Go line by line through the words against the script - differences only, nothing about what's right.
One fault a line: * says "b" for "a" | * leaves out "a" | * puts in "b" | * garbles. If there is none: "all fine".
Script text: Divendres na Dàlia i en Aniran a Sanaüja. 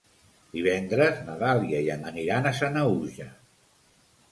all fine